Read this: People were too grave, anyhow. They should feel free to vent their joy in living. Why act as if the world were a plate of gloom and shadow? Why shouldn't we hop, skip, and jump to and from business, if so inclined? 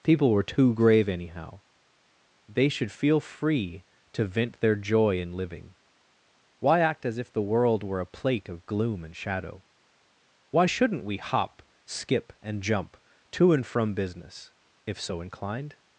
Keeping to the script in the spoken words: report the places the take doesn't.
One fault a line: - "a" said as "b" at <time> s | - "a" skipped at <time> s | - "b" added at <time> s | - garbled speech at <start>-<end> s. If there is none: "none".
none